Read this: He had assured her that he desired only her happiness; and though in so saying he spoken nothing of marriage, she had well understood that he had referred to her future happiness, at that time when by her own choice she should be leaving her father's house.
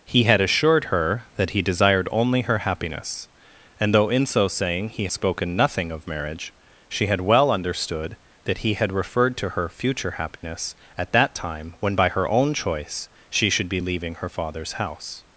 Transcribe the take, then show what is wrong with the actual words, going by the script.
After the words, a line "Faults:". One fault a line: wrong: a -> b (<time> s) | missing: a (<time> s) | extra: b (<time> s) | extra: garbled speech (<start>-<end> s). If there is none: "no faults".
He had assured her that he desired only her happiness; and though in so saying he spoken nothing of marriage, she had well understood that he had referred to her future happiness, at that time when by her own choice she should be leaving her father's house.
Faults:
no faults